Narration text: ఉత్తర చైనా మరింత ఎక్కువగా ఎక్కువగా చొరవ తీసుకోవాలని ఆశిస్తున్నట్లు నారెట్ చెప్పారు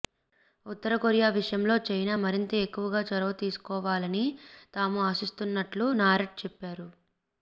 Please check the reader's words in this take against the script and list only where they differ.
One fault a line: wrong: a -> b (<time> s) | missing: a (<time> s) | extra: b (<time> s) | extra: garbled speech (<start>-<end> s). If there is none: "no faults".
extra: కొరియా విషయంలో (0.9 s)
missing: ఎక్కువగా (3.0 s)
extra: తాము (4.7 s)